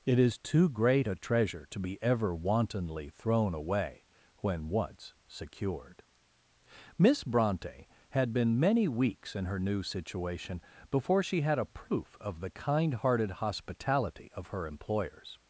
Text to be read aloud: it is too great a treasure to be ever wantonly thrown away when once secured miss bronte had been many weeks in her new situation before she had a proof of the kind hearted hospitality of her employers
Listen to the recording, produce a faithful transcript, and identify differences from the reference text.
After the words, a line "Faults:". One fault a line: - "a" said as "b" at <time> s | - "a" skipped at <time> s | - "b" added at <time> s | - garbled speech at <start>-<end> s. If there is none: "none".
it is too great a treasure to be ever wantonly thrown away when once secured miss bronte had been many weeks in her new situation before she had a proof of the kind hearted hospitality of her employers
Faults:
none